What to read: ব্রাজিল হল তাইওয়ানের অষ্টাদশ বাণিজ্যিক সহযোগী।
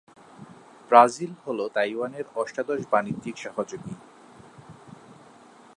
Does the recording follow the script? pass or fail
pass